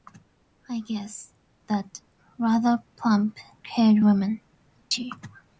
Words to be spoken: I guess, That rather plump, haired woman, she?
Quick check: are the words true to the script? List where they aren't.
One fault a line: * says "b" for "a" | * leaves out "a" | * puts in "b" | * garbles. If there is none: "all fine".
all fine